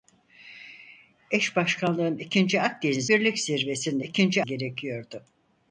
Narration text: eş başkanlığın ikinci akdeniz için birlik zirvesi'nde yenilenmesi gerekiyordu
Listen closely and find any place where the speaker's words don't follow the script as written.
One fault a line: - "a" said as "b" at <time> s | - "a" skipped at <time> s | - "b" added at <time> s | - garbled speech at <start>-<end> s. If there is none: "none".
- "için" skipped at 3.1 s
- "yenilenmesi" said as "ikinci" at 4.0 s